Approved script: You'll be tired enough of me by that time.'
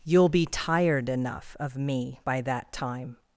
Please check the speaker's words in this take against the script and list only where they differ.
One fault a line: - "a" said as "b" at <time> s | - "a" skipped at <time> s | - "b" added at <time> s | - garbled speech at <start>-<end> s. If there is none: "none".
none